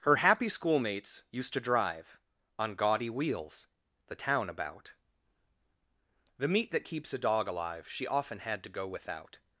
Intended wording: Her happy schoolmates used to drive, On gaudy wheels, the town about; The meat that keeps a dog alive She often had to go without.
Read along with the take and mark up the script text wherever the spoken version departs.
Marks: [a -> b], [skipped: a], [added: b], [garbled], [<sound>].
Her happy schoolmates used to drive, On gaudy wheels, the town about; The meat that keeps a dog alive She often had to go without.